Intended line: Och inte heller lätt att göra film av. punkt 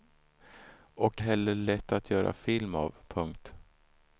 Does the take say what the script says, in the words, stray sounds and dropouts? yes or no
no